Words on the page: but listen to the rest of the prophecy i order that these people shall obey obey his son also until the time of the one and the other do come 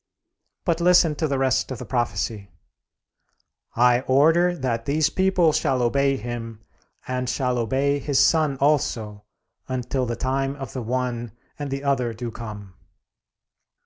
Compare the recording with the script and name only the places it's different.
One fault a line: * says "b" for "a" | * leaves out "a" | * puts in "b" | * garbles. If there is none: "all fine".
* puts in "him and shall"